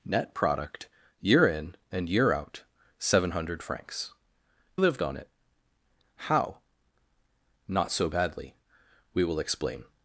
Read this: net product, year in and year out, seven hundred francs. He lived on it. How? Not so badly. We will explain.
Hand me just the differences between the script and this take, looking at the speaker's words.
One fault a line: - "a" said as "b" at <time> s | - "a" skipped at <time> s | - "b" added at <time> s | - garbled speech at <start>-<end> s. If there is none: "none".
- "He" skipped at 4.1 s